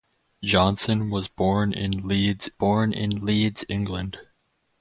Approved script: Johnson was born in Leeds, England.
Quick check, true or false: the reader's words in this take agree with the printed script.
false